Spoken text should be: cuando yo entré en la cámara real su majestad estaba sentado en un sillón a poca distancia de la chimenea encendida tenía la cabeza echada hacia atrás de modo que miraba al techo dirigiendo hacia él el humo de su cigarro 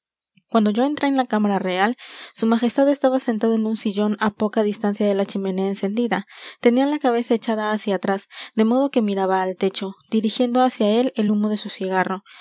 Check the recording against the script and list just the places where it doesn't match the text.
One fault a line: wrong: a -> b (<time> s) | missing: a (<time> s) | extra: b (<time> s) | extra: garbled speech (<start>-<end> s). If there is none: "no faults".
no faults